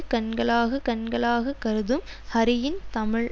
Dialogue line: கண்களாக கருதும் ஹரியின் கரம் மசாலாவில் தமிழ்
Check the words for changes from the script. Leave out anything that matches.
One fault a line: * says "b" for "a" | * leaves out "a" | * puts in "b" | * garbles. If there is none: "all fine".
* puts in "கண்களாக"
* leaves out "கரம் மசாலாவில்"